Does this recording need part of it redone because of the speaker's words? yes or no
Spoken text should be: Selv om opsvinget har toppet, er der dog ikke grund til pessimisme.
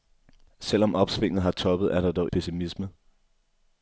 yes